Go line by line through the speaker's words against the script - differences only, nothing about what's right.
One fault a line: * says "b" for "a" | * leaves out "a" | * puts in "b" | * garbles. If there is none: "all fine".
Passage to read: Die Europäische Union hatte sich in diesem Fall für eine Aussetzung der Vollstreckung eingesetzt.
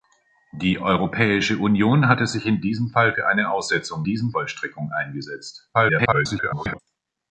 * says "diesem" for "der"
* garbles